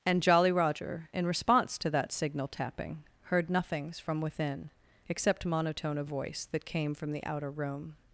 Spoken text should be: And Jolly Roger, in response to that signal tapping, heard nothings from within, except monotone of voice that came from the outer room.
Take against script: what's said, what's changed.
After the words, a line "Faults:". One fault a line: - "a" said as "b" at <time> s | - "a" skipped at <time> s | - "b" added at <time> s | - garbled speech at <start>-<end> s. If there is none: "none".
And Jolly Roger, in response to that signal tapping, heard nothings from within, except monotone of voice that came from the outer room.
Faults:
none